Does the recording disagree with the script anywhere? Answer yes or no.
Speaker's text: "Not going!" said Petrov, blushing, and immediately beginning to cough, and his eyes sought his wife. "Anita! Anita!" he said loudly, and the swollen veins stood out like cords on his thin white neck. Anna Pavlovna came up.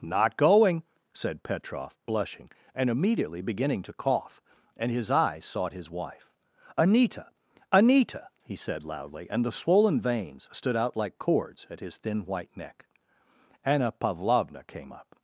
yes